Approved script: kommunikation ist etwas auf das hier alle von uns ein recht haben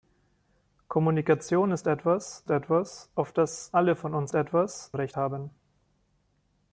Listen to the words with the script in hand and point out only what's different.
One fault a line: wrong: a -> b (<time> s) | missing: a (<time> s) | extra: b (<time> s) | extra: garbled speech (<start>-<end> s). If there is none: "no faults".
extra: etwas (2.5 s)
missing: hier (3.7 s)
wrong: ein -> etwas (4.3 s)